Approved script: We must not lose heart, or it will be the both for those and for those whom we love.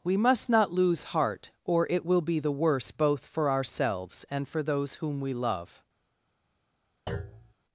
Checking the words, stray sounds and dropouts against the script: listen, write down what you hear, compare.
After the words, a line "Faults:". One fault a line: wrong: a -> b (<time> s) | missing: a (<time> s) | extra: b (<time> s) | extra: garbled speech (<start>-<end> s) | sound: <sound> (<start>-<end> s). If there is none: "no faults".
We must not lose heart, or it will be the worse both for ourselves and for those whom we love.
Faults:
extra: worse (2.5 s)
wrong: those -> ourselves (3.5 s)
sound: thud (7.1-7.5 s)